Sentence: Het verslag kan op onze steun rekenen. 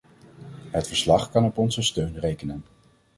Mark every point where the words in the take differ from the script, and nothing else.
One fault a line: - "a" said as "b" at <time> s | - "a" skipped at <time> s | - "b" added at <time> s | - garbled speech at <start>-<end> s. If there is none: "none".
none